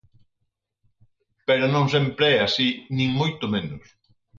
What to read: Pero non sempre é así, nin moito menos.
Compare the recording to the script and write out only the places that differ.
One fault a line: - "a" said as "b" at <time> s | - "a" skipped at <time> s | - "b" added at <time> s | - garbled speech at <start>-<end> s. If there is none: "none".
none